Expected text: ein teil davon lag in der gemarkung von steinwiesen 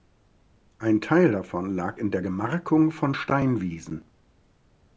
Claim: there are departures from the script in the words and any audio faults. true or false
false